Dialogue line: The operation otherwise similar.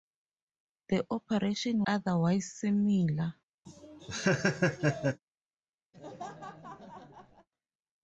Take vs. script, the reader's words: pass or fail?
pass